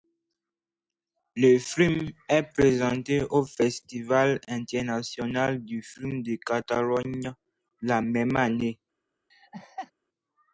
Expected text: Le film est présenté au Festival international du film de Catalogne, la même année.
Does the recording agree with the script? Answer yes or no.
yes